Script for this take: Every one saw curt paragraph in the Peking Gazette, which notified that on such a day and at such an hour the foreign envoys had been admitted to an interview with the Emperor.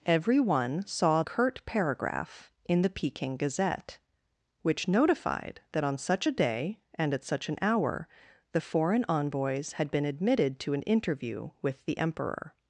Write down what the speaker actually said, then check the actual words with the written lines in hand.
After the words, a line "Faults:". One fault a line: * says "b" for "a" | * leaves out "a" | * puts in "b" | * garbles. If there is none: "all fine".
Every one saw curt paragraph in the Peking Gazette, which notified that on such a day and at such an hour the foreign envoys had been admitted to an interview with the Emperor.
Faults:
all fine